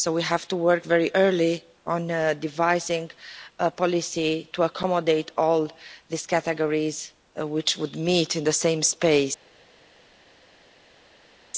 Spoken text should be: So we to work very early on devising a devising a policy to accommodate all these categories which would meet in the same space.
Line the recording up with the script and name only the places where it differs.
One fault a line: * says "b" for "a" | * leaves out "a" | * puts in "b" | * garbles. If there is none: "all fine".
* puts in "have"
* leaves out "devising a"